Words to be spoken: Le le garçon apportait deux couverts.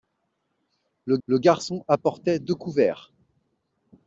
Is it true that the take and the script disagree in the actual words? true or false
false